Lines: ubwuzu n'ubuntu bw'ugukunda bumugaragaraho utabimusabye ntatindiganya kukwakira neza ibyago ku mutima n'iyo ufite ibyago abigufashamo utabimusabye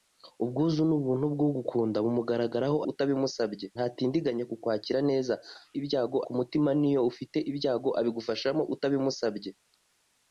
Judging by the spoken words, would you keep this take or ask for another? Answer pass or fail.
pass